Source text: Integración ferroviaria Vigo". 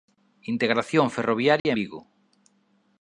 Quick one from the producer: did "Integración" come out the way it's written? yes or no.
yes